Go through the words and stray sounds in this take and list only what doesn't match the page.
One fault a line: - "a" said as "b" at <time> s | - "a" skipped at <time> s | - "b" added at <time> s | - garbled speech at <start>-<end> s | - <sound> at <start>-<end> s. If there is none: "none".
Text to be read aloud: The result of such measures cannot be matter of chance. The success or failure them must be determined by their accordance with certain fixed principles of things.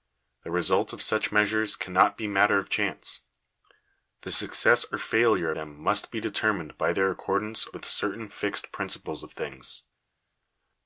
none